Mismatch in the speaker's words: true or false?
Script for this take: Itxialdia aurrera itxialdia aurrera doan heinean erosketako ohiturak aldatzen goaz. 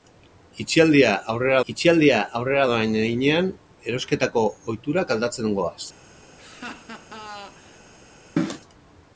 false